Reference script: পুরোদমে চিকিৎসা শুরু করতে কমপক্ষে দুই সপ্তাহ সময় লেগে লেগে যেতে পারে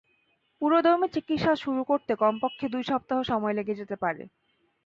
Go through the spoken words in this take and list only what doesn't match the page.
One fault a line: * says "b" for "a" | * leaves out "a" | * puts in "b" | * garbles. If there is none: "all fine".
* leaves out "লেগে"